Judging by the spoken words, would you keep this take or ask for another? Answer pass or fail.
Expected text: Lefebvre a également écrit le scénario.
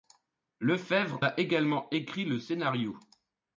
pass